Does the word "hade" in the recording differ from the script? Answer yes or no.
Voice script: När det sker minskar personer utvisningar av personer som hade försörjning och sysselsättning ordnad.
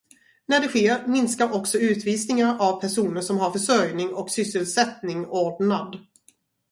yes